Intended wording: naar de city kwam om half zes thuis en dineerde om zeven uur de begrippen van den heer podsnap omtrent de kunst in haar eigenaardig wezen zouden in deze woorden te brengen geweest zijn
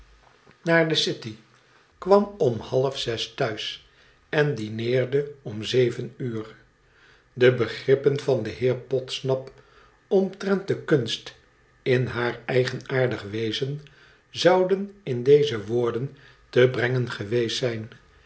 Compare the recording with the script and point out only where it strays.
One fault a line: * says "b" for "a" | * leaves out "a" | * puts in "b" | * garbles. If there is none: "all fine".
all fine